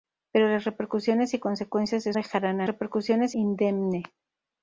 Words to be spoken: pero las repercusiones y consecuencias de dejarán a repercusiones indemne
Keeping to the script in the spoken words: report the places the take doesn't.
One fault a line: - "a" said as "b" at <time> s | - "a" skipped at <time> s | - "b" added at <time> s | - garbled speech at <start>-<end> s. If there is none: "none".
none